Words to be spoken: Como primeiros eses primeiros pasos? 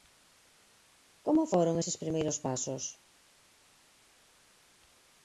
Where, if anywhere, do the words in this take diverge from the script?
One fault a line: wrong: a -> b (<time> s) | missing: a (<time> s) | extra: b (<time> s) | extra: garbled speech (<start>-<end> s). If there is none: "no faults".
wrong: primeiros -> foron (1.5 s)